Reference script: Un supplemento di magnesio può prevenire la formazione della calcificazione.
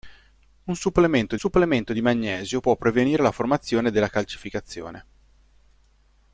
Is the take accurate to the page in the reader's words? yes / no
no